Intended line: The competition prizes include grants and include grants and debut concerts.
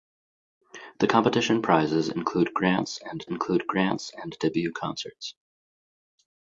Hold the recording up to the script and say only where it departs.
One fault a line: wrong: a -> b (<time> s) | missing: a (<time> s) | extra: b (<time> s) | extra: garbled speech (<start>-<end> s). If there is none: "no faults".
no faults